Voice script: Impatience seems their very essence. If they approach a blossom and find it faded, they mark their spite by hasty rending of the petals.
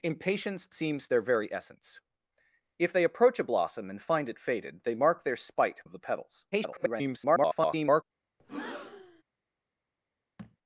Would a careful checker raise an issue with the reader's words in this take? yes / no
yes